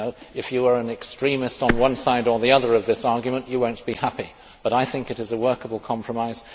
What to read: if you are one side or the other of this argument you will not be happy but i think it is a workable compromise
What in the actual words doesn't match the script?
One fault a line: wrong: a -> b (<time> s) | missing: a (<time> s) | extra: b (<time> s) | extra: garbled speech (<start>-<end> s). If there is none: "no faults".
extra: an extremist on (0.8 s)